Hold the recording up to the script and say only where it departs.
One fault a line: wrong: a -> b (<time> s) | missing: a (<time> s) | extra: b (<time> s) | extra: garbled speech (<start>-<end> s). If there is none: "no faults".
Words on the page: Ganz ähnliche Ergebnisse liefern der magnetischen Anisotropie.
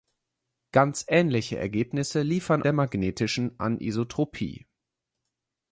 no faults